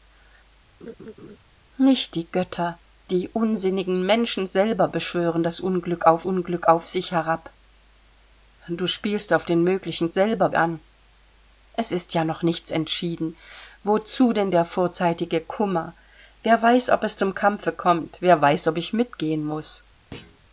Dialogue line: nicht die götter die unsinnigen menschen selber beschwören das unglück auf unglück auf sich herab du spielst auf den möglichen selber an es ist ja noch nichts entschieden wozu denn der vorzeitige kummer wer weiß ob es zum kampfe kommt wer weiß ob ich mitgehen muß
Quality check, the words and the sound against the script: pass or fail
fail